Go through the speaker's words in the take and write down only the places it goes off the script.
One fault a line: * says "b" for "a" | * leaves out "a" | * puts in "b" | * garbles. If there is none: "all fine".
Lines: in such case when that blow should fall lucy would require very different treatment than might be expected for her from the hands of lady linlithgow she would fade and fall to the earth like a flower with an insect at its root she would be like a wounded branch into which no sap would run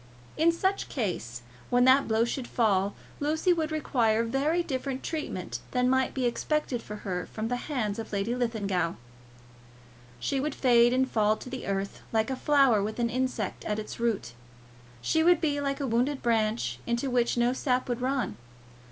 all fine